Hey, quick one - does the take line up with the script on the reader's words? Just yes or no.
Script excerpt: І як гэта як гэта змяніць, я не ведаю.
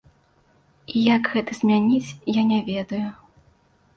no